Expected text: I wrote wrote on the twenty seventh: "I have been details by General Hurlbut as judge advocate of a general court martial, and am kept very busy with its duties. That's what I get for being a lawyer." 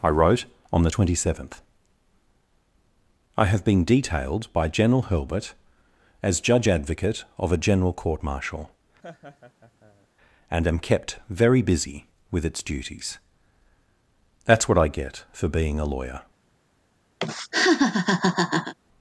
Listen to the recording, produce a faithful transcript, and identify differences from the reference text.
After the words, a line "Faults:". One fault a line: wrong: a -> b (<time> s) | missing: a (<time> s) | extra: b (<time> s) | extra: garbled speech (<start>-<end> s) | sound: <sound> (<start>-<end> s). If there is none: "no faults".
I wrote on the twenty seventh: "I have been detailed by General Hurlbut as judge advocate of a general court martial, and am kept very busy with its duties. That's what I get for being a lawyer."
Faults:
missing: wrote (0.4 s)
wrong: details -> detailed (3.8 s)
sound: laugh (9.0-10.1 s)
sound: laugh (17.2-18.7 s)